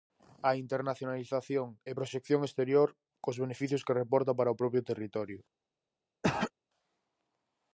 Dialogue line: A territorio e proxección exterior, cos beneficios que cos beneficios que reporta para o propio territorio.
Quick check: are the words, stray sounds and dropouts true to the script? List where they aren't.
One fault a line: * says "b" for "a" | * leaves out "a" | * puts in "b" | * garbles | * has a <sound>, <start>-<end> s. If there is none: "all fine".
* says "internacionalización" for "territorio"
* leaves out "cos beneficios que"
* has a throat clearing, 6.2-6.5 s